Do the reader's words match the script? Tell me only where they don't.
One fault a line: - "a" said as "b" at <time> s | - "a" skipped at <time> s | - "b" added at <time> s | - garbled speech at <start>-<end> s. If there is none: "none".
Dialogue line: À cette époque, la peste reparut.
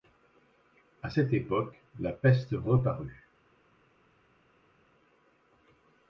none